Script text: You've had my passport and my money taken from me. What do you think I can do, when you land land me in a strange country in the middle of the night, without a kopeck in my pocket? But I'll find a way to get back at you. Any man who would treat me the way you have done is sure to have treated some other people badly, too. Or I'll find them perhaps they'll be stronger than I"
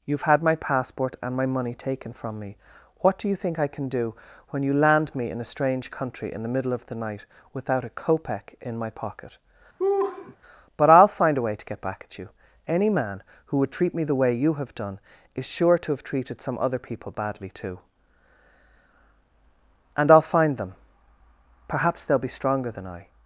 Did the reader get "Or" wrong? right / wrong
wrong